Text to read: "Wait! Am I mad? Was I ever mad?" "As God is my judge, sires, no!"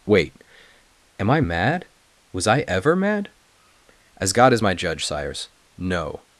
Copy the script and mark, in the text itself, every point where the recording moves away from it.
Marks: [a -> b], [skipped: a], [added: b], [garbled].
"Wait! Am I mad? Was I ever mad?" "As God is my judge, sires, no!"